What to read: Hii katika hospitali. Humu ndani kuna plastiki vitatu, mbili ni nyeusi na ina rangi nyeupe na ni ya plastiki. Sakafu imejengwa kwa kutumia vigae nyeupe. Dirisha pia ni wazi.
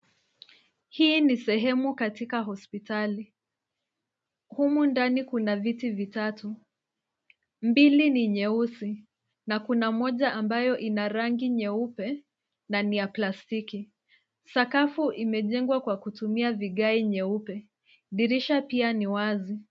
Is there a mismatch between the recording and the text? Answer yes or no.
yes